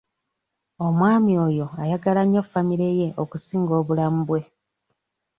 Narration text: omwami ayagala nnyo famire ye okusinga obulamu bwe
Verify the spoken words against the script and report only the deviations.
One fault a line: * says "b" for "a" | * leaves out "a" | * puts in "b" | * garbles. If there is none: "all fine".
* puts in "oyo"